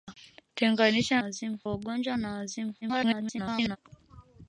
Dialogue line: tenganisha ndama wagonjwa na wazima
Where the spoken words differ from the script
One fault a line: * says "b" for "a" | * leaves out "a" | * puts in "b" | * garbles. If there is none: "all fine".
* says "wazima" for "ndama"
* garbles